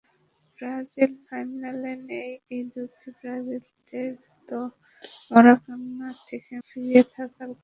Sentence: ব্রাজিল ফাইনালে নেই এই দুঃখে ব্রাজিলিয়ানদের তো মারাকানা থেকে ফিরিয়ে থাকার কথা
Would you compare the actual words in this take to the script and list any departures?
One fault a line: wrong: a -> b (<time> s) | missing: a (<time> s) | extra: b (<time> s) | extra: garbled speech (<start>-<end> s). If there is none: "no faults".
no faults